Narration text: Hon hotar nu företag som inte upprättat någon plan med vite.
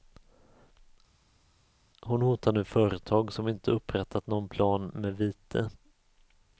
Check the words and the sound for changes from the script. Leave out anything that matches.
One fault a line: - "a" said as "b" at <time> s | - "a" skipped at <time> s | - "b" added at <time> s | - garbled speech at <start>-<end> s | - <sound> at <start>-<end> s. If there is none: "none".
none